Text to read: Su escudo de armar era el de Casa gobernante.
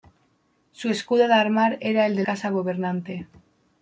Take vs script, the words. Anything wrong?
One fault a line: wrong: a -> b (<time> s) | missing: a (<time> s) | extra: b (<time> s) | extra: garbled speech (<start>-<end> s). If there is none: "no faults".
no faults